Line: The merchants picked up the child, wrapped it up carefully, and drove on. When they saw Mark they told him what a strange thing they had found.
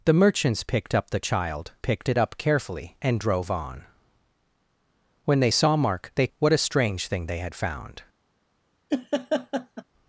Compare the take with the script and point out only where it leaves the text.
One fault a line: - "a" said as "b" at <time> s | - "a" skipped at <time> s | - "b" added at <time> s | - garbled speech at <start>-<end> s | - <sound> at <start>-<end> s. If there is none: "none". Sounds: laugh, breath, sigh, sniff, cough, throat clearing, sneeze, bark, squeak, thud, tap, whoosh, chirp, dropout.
- "wrapped" said as "picked" at 1.8 s
- "told him" skipped at 6.3 s
- laugh at 8.9-9.8 s